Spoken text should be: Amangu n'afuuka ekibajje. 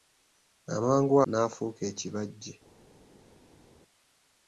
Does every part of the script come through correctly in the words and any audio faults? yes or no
yes